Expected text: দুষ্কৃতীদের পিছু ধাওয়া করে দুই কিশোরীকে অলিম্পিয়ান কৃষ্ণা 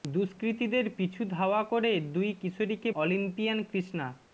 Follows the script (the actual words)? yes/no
yes